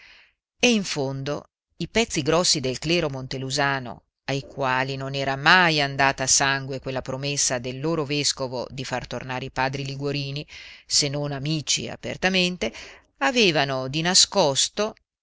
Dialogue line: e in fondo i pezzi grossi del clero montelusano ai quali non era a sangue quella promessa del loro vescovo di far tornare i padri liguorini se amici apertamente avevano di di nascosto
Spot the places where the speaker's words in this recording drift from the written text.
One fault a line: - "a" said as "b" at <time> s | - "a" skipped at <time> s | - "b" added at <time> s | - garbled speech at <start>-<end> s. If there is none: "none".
- "mai andata" added at 5.3 s
- "non" added at 11.1 s
- "di" skipped at 14.0 s